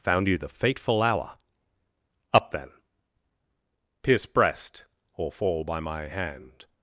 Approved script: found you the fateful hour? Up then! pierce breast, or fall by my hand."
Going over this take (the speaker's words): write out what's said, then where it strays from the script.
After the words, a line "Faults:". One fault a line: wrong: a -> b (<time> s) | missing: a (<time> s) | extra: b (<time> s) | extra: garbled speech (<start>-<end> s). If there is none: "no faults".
found you the fateful hour? Up then! pierce breast, or fall by my hand."
Faults:
no faults